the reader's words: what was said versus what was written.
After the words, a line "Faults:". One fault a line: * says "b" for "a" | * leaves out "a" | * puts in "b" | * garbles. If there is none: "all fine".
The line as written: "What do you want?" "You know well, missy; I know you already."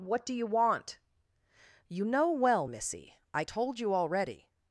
"What do you want?" "You know well, missy; I told you already."
Faults:
* says "told" for "know"